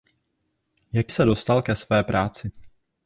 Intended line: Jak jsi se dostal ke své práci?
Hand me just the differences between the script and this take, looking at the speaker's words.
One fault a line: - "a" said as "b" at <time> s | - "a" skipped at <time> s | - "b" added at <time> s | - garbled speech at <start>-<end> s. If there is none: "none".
- "jsi" skipped at 1.1 s